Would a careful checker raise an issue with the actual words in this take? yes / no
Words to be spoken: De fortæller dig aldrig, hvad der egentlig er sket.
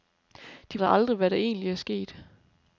yes